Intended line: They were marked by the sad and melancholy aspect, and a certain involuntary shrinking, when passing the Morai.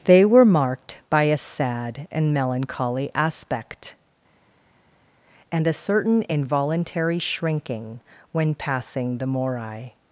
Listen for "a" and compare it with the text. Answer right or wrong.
right